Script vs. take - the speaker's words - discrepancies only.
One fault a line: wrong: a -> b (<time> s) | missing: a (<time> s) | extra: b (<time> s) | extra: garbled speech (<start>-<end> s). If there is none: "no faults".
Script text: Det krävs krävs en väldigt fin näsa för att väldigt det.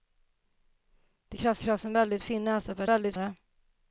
no faults